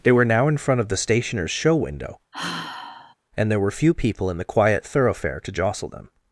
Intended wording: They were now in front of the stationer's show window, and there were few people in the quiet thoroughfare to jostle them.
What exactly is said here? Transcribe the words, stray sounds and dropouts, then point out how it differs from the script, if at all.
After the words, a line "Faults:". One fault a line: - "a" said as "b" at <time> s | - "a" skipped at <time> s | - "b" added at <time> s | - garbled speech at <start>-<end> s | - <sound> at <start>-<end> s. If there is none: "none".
They were now in front of the stationer's show window, and there were few people in the quiet thoroughfare to jostle them.
Faults:
- sigh at 2.3-3.1 s